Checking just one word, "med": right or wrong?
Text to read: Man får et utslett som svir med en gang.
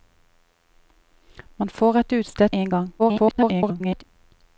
wrong